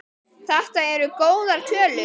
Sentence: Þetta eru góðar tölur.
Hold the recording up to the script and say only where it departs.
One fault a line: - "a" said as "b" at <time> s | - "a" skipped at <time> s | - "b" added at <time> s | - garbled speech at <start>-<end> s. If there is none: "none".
none